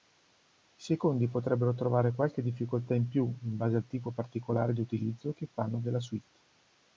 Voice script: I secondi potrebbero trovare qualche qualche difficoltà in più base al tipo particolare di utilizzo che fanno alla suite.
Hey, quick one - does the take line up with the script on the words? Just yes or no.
no